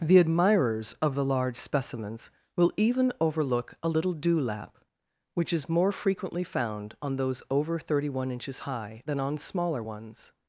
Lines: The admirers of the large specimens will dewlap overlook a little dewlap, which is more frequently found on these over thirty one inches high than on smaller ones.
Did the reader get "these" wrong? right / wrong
wrong